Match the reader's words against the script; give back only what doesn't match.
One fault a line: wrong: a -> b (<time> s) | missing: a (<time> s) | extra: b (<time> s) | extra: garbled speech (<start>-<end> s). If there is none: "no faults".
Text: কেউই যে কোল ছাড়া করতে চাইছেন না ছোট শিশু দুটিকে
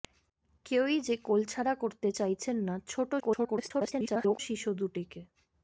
extra: garbled speech (3.2-4.4 s)